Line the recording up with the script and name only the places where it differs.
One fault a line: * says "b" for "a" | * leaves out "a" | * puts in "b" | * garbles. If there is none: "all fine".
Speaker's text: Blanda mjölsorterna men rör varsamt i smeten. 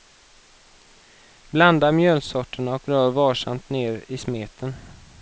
* says "och" for "men"
* puts in "ner"